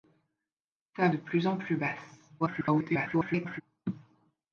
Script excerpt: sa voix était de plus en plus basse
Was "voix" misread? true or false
true